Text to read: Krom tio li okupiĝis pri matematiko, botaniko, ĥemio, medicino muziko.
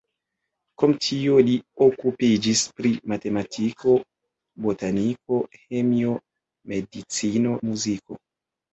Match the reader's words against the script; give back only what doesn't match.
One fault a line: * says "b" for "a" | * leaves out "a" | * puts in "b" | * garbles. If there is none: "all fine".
all fine